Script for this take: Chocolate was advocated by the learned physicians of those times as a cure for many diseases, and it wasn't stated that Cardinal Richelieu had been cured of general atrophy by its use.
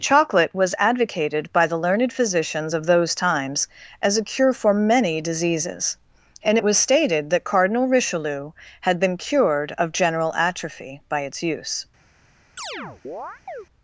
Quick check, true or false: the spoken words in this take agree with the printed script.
false